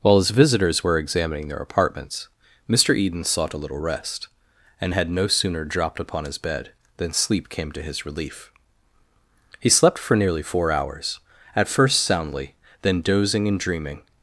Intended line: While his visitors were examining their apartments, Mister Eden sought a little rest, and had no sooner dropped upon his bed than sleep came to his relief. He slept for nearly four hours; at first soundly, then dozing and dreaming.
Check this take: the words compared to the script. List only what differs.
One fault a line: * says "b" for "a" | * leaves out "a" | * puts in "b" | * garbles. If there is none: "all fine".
all fine